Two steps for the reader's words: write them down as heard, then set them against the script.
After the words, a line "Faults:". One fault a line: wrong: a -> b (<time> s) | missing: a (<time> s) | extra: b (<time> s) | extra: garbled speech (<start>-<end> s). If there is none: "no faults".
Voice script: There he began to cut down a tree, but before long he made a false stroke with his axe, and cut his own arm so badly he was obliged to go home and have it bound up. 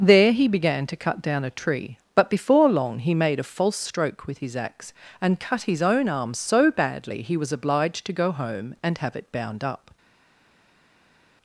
There he began to cut down a tree, but before long he made a false stroke with his axe, and cut his own arm so badly he was obliged to go home and have it bound up.
Faults:
no faults